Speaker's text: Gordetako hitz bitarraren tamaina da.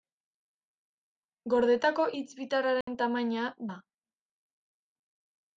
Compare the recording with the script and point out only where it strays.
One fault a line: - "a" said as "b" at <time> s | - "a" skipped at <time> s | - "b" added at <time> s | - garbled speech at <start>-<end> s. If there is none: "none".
none